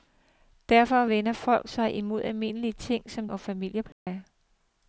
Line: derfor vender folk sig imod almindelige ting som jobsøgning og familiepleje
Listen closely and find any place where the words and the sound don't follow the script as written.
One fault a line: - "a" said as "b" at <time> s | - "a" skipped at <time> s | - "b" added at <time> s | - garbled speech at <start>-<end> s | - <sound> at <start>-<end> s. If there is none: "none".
- "jobsøgning" skipped at 3.2 s
- dropout at 3.9-4.1 s